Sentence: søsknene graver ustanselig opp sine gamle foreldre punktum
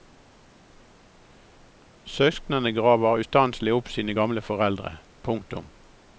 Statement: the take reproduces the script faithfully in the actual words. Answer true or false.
true